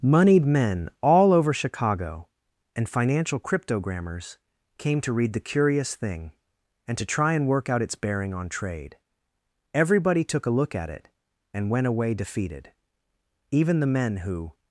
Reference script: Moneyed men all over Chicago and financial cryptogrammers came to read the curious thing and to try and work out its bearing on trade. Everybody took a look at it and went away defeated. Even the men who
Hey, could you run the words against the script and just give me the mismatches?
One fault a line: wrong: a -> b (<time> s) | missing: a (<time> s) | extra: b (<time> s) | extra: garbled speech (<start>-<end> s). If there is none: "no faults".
no faults